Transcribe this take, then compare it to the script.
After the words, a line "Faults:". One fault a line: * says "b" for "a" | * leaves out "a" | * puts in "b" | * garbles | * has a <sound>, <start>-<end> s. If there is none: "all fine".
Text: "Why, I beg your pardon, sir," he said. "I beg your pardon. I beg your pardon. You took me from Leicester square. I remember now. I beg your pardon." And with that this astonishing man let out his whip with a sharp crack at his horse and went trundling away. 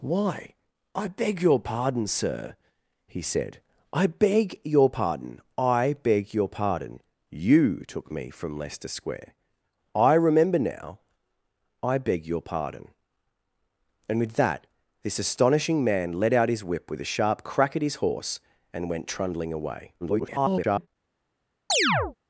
"Why, I beg your pardon, sir," he said. "I beg your pardon. I beg your pardon. You took me from Leicester square. I remember now. I beg your pardon." And with that this astonishing man let out his whip with a sharp crack at his horse and went trundling away. [garbled]
Faults:
* garbles
* has a chirp, 21.7-22.2 s